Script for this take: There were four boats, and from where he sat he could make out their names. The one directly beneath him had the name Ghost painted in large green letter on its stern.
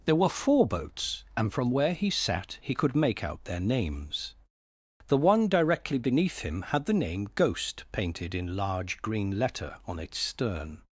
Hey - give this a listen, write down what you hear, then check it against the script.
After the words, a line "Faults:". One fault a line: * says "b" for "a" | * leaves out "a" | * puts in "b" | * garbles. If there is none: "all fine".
There were four boats, and from where he sat he could make out their names. The one directly beneath him had the name Ghost painted in large green letter on its stern.
Faults:
all fine